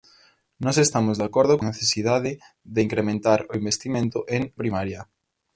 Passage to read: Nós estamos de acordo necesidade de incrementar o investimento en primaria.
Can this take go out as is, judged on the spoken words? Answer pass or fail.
pass